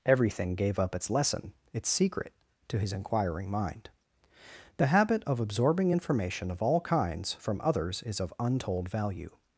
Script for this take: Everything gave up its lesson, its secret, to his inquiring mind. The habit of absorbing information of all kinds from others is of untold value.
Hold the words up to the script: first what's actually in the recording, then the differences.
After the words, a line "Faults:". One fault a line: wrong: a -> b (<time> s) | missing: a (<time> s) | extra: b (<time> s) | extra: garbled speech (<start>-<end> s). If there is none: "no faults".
Everything gave up its lesson, its secret, to his inquiring mind. The habit of absorbing information of all kinds from others is of untold value.
Faults:
no faults